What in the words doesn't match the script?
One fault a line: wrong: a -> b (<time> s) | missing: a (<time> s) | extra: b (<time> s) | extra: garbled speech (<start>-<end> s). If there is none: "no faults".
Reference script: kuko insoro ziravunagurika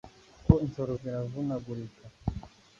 no faults